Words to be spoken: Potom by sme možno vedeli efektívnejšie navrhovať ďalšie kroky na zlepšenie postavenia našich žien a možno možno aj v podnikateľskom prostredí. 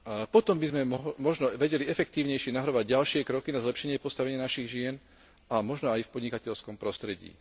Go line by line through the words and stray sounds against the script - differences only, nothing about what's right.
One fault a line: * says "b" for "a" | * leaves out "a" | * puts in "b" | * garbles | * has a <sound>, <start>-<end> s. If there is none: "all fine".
* leaves out "možno"